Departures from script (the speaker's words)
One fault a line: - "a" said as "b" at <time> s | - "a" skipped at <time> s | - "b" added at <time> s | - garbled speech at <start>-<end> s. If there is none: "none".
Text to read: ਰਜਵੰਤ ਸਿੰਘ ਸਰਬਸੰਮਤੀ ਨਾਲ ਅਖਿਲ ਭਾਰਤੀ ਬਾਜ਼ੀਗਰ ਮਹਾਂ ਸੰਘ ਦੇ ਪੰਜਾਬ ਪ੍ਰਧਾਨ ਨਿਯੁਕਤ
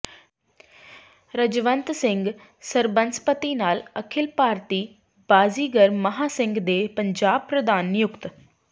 none